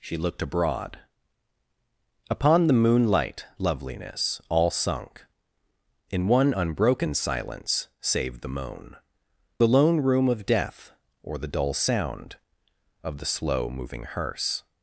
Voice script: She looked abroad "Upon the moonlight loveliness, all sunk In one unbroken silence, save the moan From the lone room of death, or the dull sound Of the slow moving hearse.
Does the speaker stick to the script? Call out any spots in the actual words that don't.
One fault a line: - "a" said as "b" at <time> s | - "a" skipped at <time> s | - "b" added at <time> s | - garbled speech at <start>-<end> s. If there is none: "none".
- "From" skipped at 8.9 s